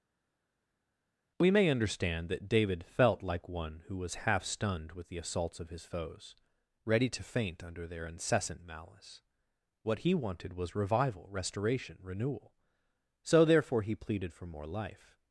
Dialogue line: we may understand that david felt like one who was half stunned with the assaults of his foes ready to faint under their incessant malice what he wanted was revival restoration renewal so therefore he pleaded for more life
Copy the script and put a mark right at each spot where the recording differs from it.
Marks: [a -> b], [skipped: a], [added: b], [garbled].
we may understand that david felt like one who was half stunned with the assaults of his foes ready to faint under their incessant malice what he wanted was revival restoration renewal so therefore he pleaded for more life